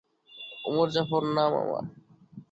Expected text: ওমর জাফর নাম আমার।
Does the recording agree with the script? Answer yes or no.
yes